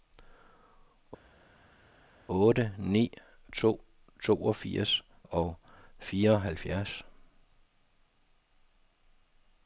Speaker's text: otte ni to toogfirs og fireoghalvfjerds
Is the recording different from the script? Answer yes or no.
no